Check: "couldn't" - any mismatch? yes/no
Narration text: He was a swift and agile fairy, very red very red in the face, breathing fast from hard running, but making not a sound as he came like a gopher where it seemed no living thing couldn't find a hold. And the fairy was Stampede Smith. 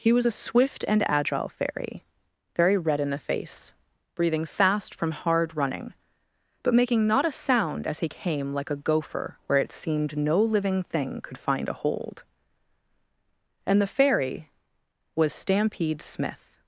yes